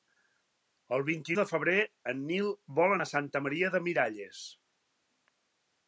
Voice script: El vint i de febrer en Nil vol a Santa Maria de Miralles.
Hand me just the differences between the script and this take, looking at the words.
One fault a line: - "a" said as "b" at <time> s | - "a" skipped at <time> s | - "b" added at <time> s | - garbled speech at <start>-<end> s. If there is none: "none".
none